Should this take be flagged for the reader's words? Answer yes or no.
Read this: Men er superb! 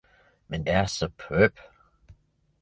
no